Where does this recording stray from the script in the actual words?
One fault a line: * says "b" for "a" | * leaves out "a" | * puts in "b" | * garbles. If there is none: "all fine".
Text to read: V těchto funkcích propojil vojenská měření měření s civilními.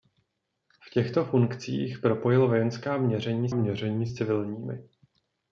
all fine